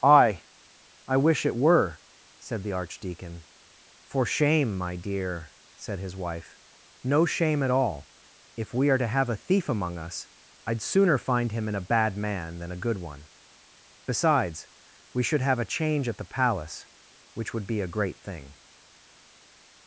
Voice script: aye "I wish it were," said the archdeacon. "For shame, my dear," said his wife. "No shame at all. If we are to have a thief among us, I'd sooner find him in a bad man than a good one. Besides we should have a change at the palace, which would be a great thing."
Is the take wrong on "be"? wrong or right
right